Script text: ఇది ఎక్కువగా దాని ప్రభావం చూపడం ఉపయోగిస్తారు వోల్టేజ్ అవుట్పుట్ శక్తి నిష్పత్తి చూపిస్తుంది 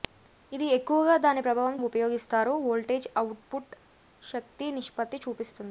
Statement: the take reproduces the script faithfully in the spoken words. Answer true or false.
false